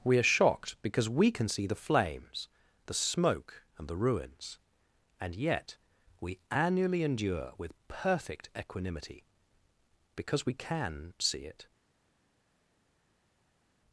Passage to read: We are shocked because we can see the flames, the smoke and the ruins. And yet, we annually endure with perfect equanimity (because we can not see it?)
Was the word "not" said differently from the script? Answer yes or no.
yes